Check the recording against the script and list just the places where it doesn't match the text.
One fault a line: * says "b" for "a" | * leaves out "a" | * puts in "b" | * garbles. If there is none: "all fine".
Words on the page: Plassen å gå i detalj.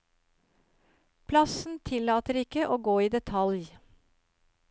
* puts in "tillater ikke"